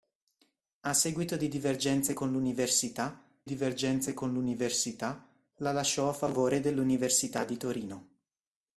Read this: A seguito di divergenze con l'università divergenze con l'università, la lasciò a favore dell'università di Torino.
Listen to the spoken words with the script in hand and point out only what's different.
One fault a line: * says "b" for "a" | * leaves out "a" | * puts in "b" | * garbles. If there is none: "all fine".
all fine